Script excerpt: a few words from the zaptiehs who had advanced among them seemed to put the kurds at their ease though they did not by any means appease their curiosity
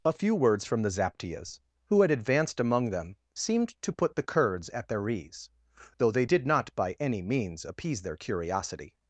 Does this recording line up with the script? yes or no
yes